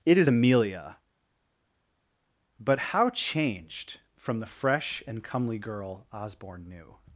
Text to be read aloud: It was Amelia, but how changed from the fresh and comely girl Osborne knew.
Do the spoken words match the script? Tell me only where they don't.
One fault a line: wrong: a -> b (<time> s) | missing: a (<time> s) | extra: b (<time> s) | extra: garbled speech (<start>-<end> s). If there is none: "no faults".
wrong: was -> is (0.2 s)